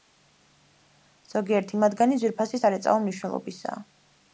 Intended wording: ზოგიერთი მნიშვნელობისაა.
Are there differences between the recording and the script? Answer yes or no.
yes